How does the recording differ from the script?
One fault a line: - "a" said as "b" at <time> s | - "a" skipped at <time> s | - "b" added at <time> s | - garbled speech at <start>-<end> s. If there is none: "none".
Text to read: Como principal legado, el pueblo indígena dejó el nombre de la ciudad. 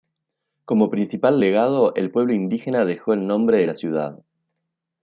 none